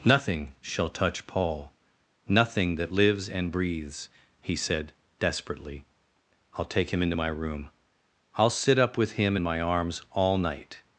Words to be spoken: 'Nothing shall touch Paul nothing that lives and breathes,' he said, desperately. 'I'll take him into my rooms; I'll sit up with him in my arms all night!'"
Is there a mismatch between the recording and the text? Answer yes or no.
yes